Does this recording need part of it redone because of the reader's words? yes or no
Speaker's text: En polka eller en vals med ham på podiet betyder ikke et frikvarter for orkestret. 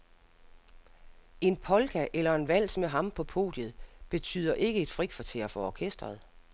no